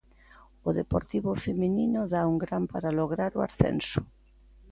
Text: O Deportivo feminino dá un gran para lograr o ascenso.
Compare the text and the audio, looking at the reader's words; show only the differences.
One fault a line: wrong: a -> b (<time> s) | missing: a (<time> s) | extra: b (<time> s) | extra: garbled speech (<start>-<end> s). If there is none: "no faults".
no faults